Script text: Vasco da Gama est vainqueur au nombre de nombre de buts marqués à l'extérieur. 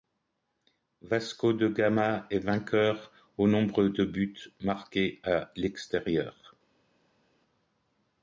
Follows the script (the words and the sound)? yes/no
no